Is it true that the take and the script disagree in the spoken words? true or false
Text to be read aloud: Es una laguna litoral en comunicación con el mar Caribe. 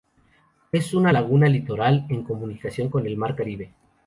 false